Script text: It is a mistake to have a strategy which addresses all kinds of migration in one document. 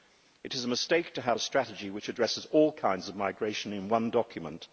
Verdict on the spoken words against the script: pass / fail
pass